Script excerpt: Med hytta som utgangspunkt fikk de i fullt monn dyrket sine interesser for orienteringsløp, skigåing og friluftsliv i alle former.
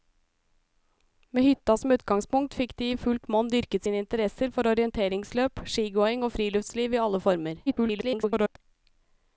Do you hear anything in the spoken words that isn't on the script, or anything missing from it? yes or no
yes